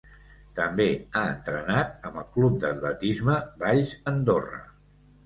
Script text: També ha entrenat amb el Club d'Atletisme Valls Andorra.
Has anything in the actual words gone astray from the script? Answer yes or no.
no